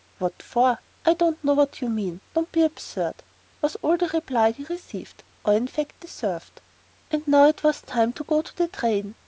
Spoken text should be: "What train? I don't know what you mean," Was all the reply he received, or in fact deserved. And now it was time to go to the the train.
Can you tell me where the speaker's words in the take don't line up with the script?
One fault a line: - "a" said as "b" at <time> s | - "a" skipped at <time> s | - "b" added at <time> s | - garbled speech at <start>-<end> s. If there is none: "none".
- "train" said as "for" at 0.4 s
- "Don't be absurd" added at 2.3 s
- "the" skipped at 8.7 s